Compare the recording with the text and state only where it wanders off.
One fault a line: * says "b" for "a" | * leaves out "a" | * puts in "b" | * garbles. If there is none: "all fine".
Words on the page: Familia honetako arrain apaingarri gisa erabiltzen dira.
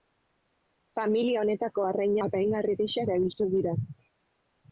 all fine